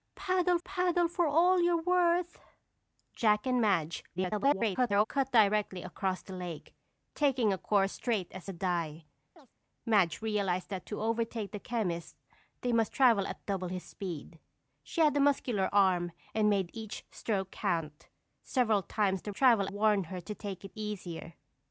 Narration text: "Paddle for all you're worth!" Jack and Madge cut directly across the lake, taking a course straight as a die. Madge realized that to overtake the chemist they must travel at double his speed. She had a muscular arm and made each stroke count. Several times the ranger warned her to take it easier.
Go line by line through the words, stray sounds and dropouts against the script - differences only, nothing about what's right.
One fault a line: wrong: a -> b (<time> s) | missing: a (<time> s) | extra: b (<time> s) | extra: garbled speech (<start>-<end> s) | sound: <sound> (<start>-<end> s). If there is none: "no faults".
extra: paddle (0.6 s)
extra: garbled speech (4.2-5.1 s)
sound: chirp (9.4-9.5 s)
wrong: ranger -> travel (19.3 s)